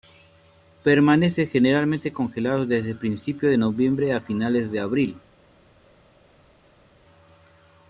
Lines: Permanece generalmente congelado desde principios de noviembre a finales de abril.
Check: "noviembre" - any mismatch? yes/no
no